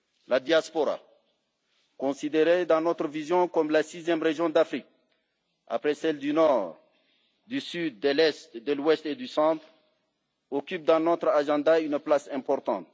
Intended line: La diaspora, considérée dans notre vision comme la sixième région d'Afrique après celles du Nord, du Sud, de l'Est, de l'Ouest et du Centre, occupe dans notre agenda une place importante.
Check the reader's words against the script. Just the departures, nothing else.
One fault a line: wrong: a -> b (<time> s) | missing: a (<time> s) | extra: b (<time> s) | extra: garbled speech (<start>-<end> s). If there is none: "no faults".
no faults